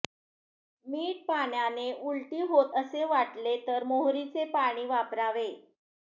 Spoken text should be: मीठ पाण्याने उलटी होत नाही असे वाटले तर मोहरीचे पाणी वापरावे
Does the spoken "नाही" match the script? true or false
false